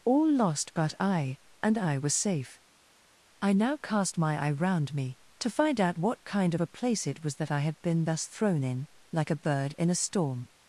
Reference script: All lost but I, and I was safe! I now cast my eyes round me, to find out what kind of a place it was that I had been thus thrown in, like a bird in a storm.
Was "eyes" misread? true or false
true